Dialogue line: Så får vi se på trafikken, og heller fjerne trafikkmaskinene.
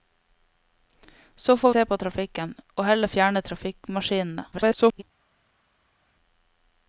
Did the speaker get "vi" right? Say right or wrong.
wrong